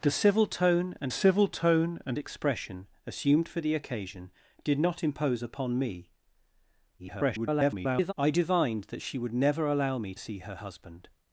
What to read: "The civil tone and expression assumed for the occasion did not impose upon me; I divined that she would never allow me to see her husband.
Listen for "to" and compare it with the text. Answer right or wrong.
wrong